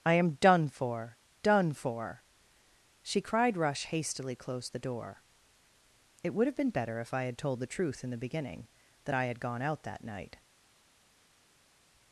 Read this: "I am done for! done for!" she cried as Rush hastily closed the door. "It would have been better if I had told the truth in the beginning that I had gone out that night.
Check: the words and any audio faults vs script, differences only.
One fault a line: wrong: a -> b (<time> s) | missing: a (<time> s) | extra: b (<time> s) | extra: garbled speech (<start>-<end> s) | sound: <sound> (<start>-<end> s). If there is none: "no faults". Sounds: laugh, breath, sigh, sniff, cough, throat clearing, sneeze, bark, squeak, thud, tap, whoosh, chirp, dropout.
missing: as (3.5 s)